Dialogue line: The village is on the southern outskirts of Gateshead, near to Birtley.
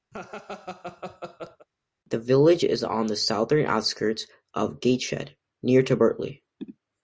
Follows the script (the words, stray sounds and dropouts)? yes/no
no